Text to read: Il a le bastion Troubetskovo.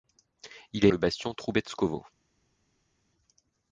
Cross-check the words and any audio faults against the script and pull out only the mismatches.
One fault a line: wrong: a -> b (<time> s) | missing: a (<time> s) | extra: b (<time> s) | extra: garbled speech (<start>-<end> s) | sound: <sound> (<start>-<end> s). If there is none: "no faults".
no faults